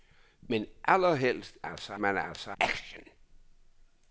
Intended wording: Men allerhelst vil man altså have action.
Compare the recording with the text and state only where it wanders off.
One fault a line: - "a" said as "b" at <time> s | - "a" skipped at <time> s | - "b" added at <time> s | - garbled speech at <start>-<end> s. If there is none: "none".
- "vil" said as "altså" at 1.6 s
- "have" skipped at 2.5 s